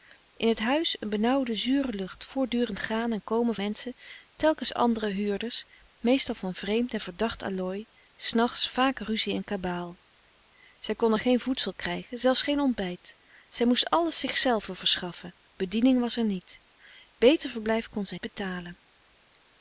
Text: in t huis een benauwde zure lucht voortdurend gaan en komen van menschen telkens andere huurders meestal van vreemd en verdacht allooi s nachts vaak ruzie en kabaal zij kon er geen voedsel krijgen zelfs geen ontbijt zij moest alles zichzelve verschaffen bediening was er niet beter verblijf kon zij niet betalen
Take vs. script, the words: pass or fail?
fail